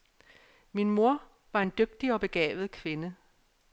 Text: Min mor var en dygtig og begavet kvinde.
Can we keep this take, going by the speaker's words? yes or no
yes